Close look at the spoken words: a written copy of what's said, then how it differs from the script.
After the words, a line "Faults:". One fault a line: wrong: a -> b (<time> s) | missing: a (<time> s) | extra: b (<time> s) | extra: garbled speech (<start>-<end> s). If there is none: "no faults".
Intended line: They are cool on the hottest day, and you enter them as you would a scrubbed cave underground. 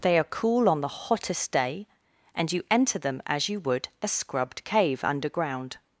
They are cool on the hottest day, and you enter them as you would a scrubbed cave underground.
Faults:
no faults